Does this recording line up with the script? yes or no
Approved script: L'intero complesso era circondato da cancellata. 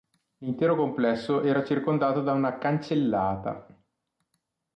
no